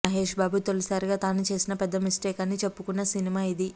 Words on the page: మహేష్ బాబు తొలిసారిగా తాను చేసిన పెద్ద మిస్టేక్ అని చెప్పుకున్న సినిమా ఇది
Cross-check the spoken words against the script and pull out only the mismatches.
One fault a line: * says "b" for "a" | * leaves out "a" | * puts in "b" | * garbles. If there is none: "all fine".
all fine